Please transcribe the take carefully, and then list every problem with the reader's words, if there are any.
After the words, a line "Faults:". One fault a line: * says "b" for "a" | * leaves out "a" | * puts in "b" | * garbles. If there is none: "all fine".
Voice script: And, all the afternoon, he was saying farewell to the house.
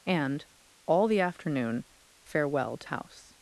And, all the afternoon, farewell to house.
Faults:
* leaves out "he was saying"
* leaves out "the"